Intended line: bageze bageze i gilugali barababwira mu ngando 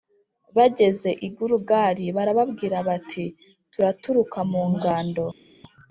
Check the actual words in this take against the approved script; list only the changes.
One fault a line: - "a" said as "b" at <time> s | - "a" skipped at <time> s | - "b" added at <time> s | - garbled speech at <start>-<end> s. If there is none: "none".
- "bageze" skipped at 1.1 s
- "bati turaturuka" added at 2.9 s